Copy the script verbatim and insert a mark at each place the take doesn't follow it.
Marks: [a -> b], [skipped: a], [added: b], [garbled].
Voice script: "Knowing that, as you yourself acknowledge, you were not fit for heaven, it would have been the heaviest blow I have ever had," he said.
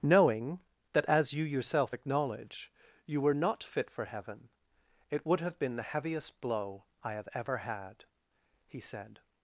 "Knowing that, as you yourself acknowledge, you were not fit for heaven, it would have been the heaviest blow I have ever had," he said.